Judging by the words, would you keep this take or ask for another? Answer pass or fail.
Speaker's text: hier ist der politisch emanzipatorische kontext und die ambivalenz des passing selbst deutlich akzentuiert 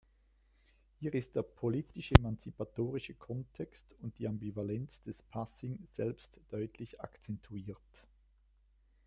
pass